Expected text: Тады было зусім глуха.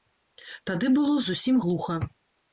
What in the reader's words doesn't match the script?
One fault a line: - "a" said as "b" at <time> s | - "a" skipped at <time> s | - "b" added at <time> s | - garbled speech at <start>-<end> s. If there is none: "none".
none